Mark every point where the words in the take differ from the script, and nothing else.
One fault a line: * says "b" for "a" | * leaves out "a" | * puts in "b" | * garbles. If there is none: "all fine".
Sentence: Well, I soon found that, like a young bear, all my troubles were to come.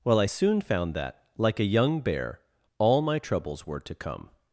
all fine